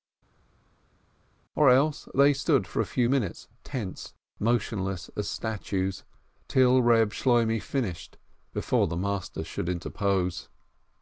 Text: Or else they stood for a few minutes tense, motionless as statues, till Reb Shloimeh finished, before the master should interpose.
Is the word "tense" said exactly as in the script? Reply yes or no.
yes